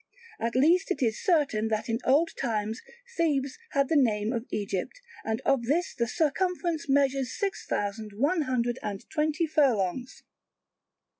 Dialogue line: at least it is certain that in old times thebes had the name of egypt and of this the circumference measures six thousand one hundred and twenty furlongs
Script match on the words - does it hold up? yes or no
yes